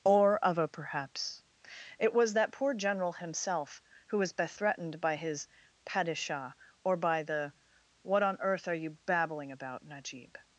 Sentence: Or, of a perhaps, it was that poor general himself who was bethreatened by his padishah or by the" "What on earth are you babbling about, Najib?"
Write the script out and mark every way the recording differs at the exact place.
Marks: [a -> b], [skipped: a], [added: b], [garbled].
Or, of a perhaps, it was that poor general himself who was bethreatened by his padishah or by the" "What on earth are you babbling about, Najib?"